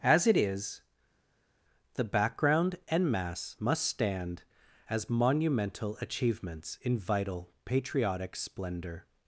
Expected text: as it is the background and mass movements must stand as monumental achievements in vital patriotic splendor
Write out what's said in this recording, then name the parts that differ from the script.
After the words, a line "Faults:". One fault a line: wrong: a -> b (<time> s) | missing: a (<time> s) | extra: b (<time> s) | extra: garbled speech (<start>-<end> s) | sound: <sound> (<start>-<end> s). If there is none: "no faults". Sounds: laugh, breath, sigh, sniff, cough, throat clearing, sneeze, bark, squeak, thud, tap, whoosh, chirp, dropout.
as it is the background and mass must stand as monumental achievements in vital patriotic splendor
Faults:
missing: movements (3.6 s)